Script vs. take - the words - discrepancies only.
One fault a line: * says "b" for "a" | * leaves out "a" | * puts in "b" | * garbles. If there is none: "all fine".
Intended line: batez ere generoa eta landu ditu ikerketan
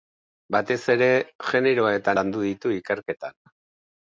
all fine